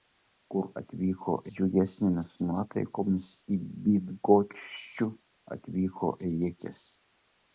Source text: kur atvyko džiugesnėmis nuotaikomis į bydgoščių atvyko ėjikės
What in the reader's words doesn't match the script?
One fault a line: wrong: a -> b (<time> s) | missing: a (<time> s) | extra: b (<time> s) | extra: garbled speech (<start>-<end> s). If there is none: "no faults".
no faults